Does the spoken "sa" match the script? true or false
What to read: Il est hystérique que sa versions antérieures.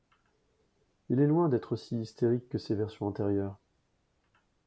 false